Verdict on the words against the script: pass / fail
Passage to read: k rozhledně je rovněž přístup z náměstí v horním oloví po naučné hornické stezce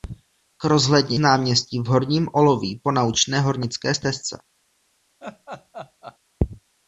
fail